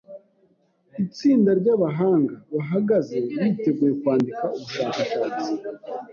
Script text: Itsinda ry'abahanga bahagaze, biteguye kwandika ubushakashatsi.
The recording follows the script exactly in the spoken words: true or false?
true